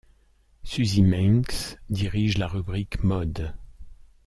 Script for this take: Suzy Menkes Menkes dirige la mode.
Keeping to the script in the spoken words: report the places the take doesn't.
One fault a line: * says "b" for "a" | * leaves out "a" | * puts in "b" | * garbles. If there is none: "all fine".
* leaves out "Menkes"
* puts in "rubrique"